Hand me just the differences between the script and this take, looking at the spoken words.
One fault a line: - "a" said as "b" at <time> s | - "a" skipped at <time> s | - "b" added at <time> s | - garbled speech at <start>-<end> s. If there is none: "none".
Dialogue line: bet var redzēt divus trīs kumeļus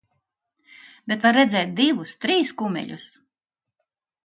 none